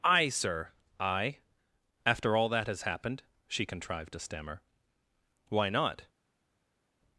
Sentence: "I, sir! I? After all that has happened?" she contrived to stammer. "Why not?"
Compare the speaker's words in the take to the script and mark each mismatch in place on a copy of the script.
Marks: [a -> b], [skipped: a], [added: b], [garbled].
"I, sir! I? After all that has happened?" she contrived to stammer. "Why not?"